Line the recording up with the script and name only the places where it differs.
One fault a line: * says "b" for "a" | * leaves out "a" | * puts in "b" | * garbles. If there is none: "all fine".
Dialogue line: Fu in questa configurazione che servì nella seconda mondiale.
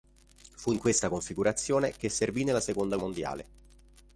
all fine